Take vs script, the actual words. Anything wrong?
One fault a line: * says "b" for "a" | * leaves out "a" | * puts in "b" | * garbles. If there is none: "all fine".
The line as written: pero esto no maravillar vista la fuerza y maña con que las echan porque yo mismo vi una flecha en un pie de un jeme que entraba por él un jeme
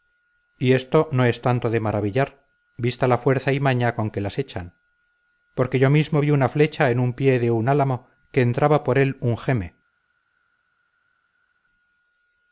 * says "y" for "pero"
* puts in "es tanto de"
* says "álamo" for "jeme"